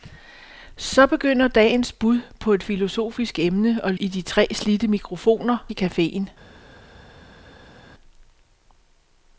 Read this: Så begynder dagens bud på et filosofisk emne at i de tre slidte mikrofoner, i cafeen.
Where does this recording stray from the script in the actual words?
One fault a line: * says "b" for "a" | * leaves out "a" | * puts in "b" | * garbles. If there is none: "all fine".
all fine